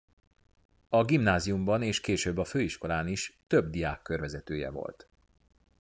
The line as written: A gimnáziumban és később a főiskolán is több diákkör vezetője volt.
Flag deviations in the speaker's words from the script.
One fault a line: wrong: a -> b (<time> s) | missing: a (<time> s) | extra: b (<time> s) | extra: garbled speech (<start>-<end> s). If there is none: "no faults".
no faults